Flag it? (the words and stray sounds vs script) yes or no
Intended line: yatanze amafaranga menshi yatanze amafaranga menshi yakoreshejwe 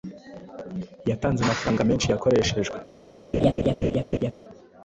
yes